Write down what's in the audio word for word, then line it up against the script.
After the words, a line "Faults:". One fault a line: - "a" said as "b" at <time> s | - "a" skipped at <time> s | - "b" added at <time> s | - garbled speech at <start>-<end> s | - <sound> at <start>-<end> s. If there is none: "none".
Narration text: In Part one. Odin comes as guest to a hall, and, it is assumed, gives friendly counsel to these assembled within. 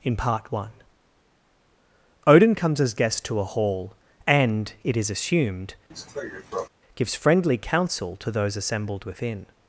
In Part one. Odin comes as guest to a hall, and, it is assumed, gives friendly counsel to those assembled within.
Faults:
- cough at 5.9-6.7 s
- "these" said as "those" at 8.3 s